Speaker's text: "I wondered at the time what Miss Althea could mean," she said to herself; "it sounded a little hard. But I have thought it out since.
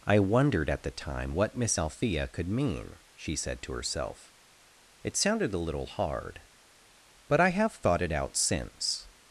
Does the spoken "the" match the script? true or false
true